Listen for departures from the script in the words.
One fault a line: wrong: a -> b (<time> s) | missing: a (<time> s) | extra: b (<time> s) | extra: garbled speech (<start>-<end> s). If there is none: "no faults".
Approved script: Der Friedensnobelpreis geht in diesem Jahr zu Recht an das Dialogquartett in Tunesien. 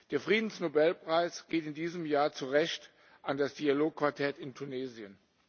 no faults